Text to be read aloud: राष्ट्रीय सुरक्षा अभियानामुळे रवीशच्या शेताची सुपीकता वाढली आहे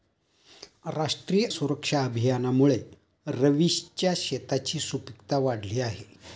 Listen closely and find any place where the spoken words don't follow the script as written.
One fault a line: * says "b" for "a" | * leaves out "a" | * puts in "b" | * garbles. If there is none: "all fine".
all fine